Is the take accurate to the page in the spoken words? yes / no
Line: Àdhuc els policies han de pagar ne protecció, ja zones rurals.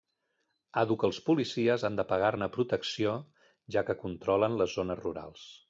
no